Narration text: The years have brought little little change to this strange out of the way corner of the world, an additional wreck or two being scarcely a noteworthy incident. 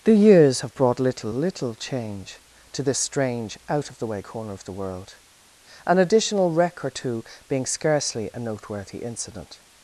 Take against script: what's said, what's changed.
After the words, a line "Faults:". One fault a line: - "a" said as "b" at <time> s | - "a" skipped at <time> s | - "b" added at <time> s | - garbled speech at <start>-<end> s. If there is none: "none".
The years have brought little little change to this strange out of the way corner of the world, an additional wreck or two being scarcely a noteworthy incident.
Faults:
none